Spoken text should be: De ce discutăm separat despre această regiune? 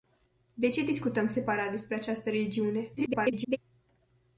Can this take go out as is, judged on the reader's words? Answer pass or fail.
fail